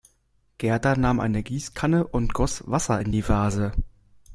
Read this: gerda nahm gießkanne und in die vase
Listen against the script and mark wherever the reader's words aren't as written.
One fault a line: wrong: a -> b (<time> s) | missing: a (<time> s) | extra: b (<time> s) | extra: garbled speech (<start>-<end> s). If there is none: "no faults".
extra: eine (1.2 s)
extra: goss wasser (2.3 s)